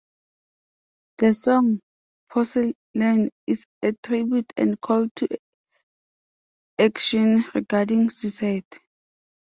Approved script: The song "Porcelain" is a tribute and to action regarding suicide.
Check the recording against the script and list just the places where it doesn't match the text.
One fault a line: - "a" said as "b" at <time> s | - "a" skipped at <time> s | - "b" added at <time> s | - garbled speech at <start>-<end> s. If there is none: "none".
- "call" added at 4.8 s